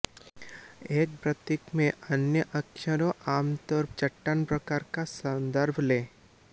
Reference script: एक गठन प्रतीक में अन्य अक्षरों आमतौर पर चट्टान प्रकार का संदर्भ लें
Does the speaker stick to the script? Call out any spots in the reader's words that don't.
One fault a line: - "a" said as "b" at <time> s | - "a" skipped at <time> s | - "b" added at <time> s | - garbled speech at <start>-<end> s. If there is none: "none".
- "गठन" skipped at 1.1 s
- "पर" skipped at 3.8 s